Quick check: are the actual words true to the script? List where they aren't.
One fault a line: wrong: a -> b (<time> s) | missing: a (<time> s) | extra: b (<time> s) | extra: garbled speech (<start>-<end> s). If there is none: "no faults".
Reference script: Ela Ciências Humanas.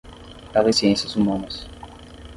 no faults